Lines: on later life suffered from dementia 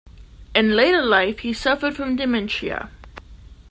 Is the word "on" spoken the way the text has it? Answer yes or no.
no